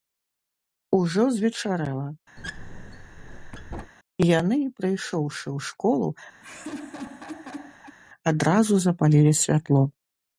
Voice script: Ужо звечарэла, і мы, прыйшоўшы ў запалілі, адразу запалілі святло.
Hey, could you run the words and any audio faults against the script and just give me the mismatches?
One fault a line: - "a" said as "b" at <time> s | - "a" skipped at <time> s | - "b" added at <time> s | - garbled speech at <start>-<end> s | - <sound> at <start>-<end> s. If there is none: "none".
- squeak at 2.4-3.9 s
- "мы" said as "яны" at 4.4 s
- "запалілі" said as "школу" at 5.7 s
- laugh at 6.4-8.0 s